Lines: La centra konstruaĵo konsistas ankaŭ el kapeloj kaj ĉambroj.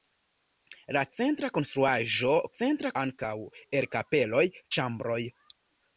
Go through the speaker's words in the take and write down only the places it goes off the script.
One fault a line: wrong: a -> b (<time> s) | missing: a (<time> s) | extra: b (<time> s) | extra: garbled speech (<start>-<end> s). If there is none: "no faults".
wrong: konsistas -> centra (2.6 s)
missing: kaj (4.4 s)